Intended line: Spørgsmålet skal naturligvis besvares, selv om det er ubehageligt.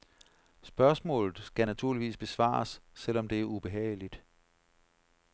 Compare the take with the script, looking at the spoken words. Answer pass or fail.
pass